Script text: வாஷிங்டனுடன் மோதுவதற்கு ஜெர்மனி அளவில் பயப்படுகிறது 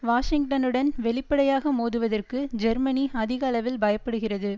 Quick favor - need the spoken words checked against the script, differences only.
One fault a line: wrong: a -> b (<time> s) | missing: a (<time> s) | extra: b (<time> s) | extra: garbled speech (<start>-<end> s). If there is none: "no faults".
extra: வெளிப்படையாக (1.0 s)
extra: அதிக (3.1 s)